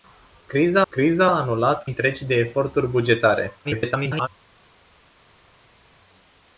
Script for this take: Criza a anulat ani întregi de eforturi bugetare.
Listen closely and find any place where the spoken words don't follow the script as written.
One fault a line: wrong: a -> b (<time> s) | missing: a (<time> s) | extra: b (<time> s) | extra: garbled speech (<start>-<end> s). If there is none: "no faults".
extra: criza (0.9 s)
missing: ani (1.8 s)
extra: garbled speech (3.6-4.3 s)